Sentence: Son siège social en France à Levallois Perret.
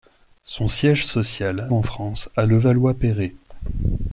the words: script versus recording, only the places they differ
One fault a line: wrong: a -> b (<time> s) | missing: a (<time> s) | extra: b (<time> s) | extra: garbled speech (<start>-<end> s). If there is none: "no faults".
no faults